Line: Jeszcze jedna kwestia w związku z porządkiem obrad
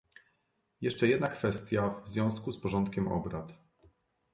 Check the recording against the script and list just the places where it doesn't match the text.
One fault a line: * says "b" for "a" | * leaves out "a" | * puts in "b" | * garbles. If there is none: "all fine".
all fine